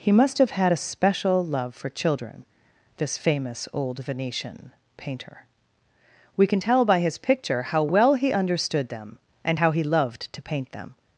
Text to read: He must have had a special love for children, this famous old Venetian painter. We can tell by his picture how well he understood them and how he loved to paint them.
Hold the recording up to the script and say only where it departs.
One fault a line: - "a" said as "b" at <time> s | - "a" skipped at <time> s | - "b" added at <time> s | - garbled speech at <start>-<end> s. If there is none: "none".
none